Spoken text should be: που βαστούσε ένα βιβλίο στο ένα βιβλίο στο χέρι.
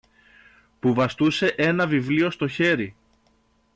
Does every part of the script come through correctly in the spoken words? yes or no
no